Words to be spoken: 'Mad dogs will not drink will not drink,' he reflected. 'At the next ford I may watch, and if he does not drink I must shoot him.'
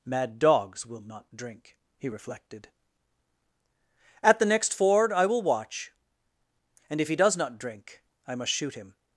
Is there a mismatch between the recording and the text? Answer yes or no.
yes